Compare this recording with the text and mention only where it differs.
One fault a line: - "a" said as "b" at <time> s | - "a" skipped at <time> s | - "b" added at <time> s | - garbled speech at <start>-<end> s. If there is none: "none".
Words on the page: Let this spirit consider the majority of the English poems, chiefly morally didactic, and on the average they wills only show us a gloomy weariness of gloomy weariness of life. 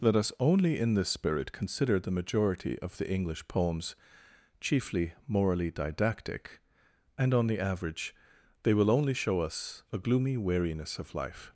- "us only in" added at 0.1 s
- "wills" said as "will" at 8.7 s
- "gloomy weariness of" skipped at 11.1 s